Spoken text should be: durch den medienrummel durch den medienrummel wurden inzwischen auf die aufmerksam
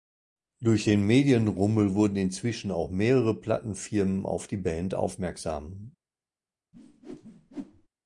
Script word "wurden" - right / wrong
wrong